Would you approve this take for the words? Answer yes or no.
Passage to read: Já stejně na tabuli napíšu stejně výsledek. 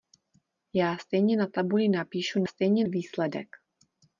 yes